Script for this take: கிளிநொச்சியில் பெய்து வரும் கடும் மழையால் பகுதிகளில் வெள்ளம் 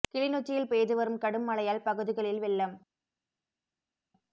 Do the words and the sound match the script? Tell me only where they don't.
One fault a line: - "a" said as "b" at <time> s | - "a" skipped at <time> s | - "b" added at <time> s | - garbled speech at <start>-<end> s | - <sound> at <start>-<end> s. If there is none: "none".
none